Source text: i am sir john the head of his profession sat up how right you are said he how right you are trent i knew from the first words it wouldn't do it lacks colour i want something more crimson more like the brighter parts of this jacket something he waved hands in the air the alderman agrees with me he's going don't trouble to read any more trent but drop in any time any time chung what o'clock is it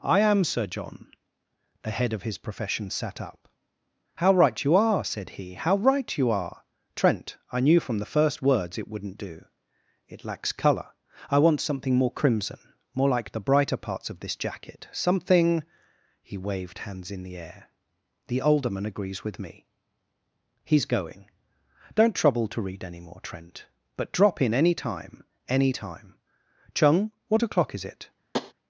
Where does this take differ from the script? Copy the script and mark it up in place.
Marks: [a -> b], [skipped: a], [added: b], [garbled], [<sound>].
i am sir john the head of his profession sat up how right you are said he how right you are trent i knew from the first words it wouldn't do it lacks colour i want something more crimson more like the brighter parts of this jacket something he waved hands in the air the alderman agrees with me he's going don't trouble to read any more trent but drop in any time any time chung what o'clock is it [tap]